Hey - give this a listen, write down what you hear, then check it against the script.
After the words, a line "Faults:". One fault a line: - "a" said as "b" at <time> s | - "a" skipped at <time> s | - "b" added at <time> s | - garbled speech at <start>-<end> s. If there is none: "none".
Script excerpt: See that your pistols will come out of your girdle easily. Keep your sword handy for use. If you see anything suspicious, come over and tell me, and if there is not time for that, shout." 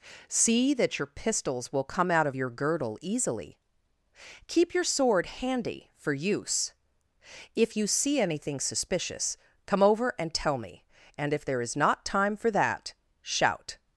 See that your pistols will come out of your girdle easily. Keep your sword handy for use. If you see anything suspicious, come over and tell me, and if there is not time for that, shout."
Faults:
none